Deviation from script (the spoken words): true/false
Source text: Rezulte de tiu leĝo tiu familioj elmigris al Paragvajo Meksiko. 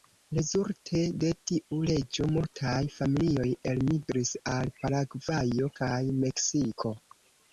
true